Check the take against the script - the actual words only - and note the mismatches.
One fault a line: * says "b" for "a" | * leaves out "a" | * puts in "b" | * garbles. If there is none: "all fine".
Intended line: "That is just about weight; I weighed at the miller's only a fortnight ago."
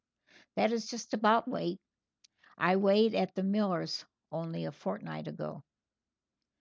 all fine